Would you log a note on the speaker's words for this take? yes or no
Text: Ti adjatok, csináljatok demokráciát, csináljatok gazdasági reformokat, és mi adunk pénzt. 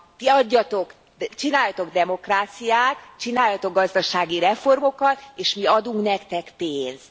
yes